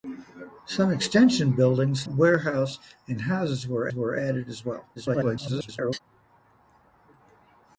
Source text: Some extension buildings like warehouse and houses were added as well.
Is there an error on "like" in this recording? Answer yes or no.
yes